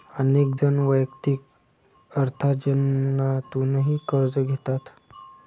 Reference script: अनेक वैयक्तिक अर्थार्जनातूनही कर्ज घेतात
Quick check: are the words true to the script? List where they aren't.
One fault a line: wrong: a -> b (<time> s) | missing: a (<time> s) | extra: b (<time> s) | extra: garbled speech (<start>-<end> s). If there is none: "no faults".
extra: जण (0.5 s)